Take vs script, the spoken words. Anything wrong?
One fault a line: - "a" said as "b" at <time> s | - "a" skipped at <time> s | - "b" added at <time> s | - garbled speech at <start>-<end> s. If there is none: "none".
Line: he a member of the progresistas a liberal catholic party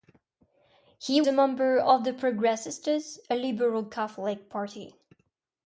none